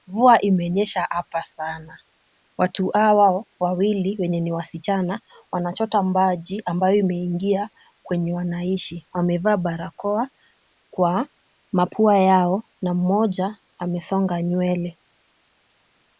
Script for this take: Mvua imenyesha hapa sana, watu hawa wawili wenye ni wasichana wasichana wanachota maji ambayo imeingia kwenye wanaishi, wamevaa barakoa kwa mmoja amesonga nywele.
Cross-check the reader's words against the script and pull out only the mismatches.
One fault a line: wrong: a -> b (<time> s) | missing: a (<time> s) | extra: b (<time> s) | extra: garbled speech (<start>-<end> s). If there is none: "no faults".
missing: wasichana (5.2 s)
extra: mapua yao na (11.7 s)